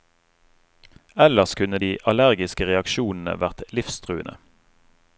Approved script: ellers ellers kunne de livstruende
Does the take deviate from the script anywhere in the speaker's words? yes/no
yes